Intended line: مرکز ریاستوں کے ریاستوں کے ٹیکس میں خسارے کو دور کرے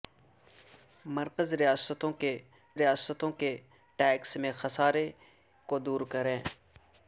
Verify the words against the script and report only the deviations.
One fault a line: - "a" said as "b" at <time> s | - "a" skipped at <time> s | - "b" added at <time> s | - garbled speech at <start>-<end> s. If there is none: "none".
none